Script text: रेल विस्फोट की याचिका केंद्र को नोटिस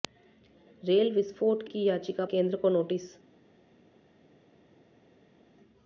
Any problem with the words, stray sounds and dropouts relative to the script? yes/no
no